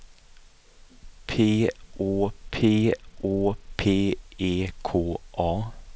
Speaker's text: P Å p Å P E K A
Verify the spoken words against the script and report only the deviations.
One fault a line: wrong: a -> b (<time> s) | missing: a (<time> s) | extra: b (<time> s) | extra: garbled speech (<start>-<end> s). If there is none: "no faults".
no faults